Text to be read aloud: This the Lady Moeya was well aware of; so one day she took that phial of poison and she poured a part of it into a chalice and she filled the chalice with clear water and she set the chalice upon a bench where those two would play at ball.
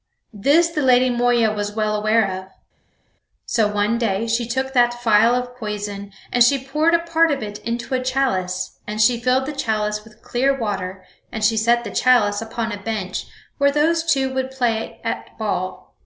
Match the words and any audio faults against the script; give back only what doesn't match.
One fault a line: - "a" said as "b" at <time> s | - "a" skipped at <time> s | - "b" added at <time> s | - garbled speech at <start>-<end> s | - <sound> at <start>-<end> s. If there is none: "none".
none